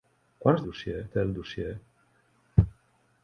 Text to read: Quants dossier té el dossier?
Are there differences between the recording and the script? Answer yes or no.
no